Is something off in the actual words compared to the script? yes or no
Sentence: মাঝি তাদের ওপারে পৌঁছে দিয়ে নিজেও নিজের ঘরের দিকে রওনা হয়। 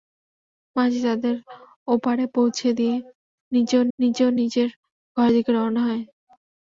yes